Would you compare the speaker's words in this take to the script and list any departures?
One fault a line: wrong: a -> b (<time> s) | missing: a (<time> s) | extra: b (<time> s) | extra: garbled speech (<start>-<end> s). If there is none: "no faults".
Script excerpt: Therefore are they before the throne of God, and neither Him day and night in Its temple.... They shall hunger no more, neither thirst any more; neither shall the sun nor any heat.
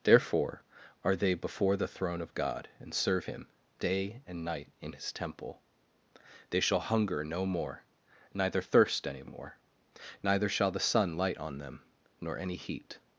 wrong: neither -> serve (2.9 s)
wrong: Its -> His (4.9 s)
extra: light on them (11.2 s)